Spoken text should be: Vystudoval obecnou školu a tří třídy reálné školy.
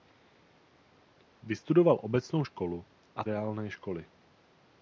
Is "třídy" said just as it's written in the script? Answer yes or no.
no